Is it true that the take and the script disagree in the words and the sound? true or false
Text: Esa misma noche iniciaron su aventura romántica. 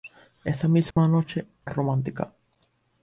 true